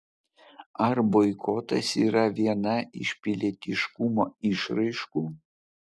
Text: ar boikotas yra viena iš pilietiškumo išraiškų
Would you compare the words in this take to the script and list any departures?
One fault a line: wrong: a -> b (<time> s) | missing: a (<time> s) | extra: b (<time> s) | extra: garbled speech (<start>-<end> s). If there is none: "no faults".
no faults